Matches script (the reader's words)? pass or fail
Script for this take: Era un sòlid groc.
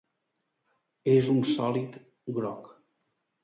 fail